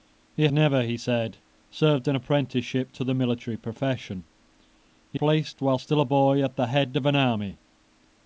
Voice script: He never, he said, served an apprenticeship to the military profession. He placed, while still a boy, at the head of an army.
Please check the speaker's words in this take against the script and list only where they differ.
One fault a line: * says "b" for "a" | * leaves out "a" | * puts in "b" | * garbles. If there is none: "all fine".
all fine